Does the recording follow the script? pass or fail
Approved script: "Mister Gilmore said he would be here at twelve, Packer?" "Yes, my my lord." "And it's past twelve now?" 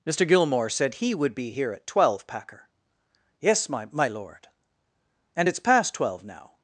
pass